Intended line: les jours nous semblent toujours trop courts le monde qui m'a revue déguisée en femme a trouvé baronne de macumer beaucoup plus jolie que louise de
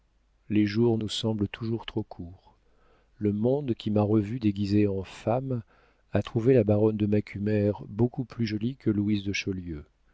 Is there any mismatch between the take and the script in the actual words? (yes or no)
yes